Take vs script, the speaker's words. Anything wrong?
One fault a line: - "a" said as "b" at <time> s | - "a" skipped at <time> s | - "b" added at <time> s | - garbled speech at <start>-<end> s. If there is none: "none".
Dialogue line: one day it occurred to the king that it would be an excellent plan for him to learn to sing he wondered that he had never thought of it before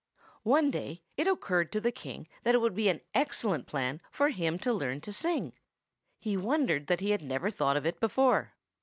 none